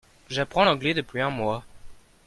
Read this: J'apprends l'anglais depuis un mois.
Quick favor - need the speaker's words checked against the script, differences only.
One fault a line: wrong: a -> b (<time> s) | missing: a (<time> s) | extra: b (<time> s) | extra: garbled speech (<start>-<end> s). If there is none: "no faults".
no faults